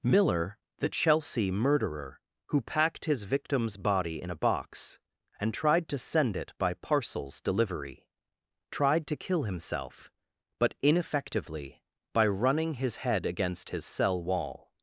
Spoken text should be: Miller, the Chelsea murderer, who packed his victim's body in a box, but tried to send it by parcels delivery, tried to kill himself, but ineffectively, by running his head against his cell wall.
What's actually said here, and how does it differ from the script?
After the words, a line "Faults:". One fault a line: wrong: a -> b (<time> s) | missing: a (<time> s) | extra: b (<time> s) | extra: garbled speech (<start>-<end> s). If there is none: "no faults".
Miller, the Chelsea murderer, who packed his victim's body in a box, and tried to send it by parcels delivery, tried to kill himself, but ineffectively, by running his head against his cell wall.
Faults:
wrong: but -> and (5.4 s)